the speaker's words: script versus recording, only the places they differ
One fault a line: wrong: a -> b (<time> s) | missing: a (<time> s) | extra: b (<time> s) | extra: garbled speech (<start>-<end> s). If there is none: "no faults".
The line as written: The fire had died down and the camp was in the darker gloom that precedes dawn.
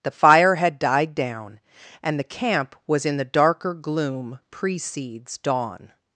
missing: that (4.4 s)